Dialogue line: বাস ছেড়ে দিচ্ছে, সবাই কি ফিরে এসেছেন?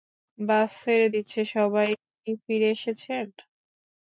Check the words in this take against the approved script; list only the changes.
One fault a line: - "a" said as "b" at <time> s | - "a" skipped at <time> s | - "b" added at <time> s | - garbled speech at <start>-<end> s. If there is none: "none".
none